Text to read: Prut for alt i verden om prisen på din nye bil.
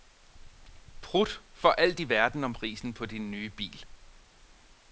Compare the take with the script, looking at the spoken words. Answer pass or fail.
pass